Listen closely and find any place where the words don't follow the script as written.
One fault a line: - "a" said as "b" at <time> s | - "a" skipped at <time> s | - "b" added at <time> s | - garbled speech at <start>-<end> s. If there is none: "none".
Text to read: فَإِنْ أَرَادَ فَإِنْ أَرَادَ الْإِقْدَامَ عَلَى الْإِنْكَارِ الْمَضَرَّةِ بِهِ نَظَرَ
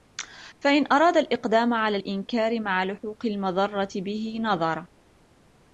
- "فَإِنْ أَرَادَ" skipped at 1.2 s
- "مَعَ لُحُوقِ" added at 2.6 s